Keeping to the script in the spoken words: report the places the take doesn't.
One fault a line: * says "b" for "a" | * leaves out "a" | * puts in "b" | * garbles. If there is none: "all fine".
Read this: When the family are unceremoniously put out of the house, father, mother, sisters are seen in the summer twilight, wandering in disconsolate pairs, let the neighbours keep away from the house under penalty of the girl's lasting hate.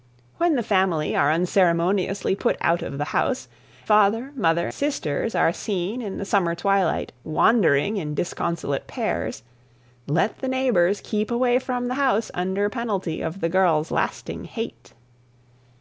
all fine